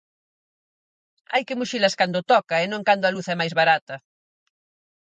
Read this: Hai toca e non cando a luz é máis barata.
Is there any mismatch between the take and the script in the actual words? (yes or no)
yes